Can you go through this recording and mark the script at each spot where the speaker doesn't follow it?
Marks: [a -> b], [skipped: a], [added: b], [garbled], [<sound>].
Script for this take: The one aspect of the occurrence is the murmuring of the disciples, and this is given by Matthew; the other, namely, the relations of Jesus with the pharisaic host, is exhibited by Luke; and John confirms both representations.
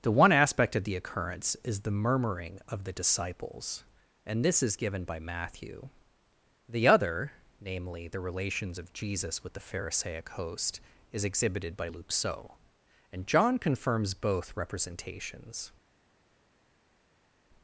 The one aspect of the occurrence is the murmuring of the disciples, and this is given by Matthew; the other, namely, the relations of Jesus with the pharisaic host, is exhibited by Luke; [added: so] and John confirms both representations.